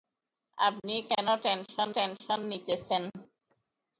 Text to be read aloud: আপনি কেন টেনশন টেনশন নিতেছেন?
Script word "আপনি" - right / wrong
right